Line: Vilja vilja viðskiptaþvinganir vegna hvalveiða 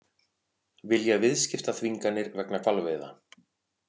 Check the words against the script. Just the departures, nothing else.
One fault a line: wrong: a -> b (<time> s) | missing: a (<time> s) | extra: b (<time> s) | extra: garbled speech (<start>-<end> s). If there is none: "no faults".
missing: vilja (1.2 s)